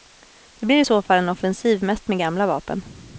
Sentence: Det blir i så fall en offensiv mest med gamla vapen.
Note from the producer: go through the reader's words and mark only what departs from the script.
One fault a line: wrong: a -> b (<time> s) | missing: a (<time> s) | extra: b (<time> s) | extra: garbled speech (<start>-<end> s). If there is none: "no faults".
no faults